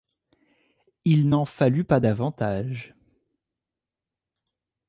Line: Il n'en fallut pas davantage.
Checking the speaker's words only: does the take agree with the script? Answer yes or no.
yes